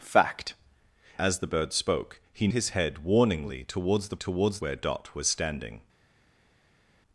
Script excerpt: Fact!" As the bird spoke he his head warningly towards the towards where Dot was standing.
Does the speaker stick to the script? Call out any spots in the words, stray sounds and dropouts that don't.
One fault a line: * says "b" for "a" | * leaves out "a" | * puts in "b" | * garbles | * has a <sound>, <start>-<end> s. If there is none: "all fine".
all fine